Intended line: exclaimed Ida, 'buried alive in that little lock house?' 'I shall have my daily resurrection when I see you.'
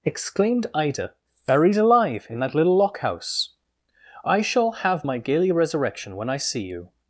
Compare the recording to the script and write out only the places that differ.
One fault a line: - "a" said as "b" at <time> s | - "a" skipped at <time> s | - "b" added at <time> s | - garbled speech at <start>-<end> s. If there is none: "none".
- "daily" said as "gaily" at 5.2 s